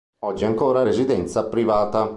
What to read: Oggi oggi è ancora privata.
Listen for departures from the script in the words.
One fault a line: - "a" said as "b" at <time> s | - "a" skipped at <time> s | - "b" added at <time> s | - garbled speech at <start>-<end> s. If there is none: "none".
- "oggi" skipped at 0.5 s
- "residenza" added at 0.8 s